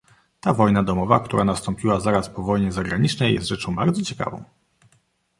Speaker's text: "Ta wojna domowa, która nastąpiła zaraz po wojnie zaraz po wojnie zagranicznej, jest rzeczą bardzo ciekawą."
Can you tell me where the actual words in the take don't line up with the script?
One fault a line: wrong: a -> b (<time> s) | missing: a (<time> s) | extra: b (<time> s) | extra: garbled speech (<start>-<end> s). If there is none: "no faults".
missing: zaraz po wojnie (2.7 s)